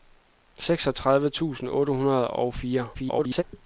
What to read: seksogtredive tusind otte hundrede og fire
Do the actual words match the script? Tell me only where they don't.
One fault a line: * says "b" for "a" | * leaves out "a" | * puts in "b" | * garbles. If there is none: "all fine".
* garbles